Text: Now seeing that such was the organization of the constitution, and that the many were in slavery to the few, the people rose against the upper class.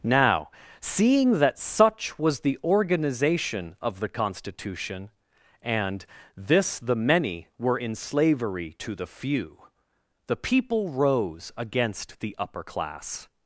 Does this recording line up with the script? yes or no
no